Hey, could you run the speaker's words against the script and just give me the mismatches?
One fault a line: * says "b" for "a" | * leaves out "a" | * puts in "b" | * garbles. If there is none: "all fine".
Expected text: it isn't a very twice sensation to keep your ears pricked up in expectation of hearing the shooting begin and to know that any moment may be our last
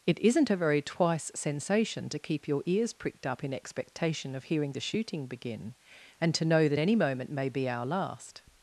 all fine